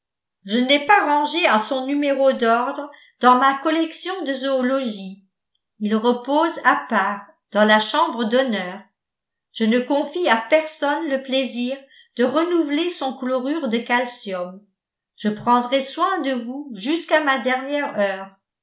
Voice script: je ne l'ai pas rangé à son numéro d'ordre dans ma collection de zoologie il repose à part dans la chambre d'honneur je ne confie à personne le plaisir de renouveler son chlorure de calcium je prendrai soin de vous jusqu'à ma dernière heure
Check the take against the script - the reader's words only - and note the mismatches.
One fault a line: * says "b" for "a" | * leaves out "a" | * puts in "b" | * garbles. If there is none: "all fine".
all fine